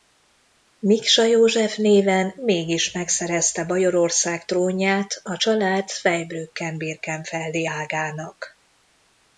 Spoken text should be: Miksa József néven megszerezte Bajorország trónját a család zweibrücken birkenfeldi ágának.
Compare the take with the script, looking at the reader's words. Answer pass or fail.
fail